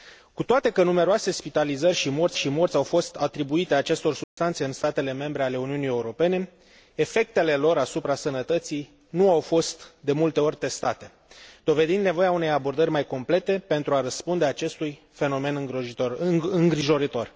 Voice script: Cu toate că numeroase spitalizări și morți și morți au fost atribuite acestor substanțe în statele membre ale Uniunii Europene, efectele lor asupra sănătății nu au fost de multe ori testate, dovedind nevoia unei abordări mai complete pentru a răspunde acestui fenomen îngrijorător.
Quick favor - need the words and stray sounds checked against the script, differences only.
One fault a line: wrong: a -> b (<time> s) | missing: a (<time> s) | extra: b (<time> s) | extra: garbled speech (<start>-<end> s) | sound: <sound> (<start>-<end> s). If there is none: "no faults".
sound: dropout (4.2-4.4 s)